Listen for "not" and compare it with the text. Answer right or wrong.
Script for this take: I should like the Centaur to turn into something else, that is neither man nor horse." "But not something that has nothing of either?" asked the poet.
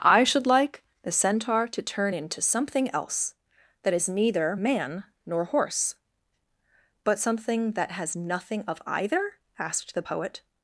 wrong